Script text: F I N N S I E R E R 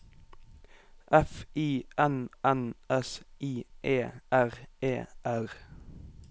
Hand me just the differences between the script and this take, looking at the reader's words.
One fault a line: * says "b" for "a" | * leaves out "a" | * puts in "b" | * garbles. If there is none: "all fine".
all fine